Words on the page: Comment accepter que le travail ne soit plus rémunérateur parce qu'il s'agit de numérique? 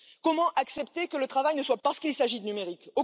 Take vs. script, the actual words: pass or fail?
fail